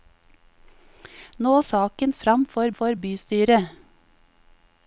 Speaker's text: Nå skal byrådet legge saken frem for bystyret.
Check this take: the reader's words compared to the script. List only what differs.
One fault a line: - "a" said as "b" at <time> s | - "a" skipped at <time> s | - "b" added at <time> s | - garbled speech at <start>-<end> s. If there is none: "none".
- "skal byrådet legge" skipped at 1.5 s
- "for" added at 2.8 s